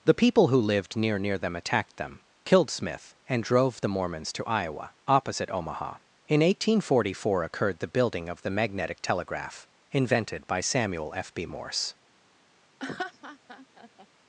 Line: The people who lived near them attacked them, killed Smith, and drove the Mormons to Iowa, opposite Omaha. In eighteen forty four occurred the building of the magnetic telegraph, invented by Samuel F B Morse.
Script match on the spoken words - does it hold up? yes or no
no